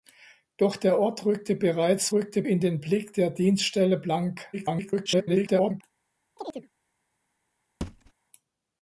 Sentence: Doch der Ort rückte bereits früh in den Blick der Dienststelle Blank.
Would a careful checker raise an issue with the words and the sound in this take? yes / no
yes